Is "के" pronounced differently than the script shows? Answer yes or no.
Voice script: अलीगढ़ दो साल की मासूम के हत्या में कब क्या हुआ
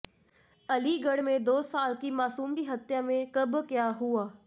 yes